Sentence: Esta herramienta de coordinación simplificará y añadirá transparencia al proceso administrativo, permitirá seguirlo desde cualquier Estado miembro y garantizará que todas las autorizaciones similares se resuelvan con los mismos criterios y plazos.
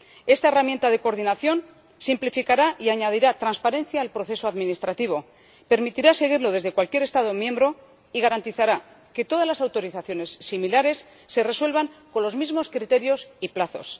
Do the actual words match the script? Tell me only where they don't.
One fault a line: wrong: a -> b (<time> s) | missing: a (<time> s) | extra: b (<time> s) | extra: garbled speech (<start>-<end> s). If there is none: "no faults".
no faults